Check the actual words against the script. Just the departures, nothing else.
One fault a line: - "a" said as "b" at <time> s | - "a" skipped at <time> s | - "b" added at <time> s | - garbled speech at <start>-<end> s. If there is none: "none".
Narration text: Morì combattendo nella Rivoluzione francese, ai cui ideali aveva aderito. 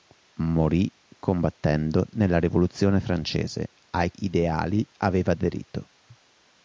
- "cui" skipped at 4.1 s